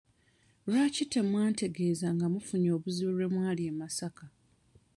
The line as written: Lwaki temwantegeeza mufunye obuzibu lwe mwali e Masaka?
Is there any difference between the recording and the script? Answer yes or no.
yes